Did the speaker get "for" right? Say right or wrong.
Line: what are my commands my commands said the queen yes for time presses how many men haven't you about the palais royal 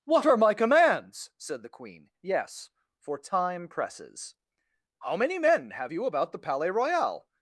right